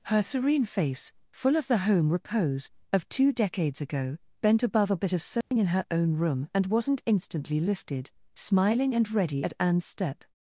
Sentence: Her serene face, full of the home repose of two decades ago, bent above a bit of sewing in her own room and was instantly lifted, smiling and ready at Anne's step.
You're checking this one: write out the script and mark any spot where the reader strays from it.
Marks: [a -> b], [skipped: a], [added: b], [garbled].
Her serene face, full of the home repose of two decades ago, bent above a bit of sewing in her own room and [was -> wasn't] instantly lifted, smiling and ready at Anne's step.